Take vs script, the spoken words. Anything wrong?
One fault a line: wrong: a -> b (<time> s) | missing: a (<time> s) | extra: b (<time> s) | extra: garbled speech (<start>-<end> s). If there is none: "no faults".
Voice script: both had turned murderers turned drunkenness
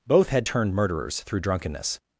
wrong: turned -> through (1.2 s)